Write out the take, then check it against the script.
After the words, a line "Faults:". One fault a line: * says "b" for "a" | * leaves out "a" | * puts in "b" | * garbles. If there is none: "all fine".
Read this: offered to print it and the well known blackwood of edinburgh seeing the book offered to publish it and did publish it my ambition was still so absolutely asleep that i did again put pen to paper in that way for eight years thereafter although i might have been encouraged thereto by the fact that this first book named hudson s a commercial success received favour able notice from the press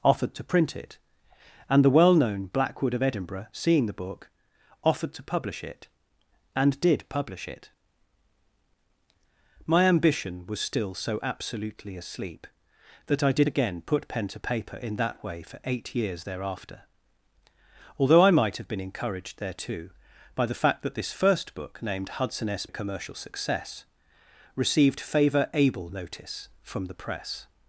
offered to print it and the well known blackwood of edinburgh seeing the book offered to publish it and did publish it my ambition was still so absolutely asleep that i did again put pen to paper in that way for eight years thereafter although i might have been encouraged thereto by the fact that this first book named hudson s a commercial success received favour able notice from the press
Faults:
all fine